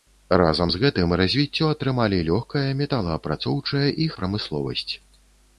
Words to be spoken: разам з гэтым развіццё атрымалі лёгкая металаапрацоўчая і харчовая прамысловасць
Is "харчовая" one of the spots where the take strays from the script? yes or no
yes